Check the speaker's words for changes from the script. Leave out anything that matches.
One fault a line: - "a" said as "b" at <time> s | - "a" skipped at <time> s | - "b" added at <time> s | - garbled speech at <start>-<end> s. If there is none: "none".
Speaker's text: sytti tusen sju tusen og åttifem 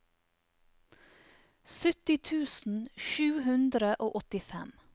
- "tusen" said as "hundre" at 3.5 s